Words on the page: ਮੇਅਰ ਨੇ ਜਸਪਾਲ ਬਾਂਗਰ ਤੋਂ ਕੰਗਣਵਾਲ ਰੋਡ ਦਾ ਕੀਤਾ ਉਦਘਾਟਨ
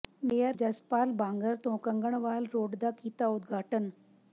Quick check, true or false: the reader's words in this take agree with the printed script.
false